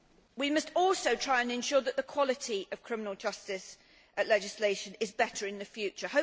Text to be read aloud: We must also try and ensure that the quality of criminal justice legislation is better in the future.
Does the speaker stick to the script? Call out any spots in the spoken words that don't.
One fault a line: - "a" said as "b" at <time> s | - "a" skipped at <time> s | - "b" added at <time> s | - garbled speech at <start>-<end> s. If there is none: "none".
none